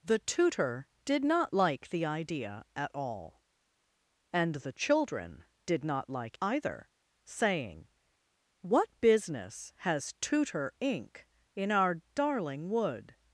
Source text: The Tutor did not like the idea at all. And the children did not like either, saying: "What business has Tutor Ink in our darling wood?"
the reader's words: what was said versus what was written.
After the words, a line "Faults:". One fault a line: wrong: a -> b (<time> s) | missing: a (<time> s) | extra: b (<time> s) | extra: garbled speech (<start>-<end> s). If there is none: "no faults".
The Tutor did not like the idea at all. And the children did not like either, saying: "What business has Tutor Ink in our darling wood?"
Faults:
no faults